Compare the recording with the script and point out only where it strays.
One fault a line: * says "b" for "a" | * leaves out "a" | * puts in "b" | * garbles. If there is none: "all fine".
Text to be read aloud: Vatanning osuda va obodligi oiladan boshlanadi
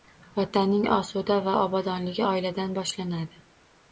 all fine